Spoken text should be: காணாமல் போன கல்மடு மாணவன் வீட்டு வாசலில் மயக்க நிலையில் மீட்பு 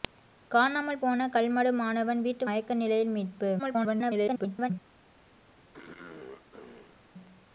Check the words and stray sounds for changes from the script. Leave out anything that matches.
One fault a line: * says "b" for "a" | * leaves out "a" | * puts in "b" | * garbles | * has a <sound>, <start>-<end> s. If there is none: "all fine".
* leaves out "வாசலில்"
* garbles
* has a throat clearing, 5.7-7.0 s